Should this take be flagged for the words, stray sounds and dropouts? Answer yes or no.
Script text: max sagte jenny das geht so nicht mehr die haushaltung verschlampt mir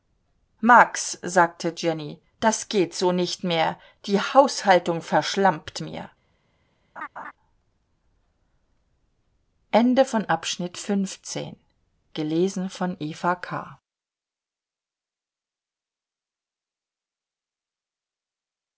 yes